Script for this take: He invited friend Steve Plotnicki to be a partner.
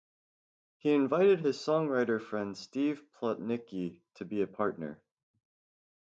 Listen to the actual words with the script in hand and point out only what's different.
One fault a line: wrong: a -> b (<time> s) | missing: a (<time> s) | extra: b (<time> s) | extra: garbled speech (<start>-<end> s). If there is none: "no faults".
extra: his songwriter (1.4 s)